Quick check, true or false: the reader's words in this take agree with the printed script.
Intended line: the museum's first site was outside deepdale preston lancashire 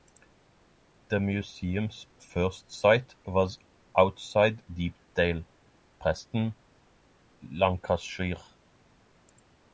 true